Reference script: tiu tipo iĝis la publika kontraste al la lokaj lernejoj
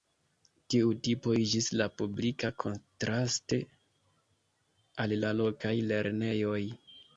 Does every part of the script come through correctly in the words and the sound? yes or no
yes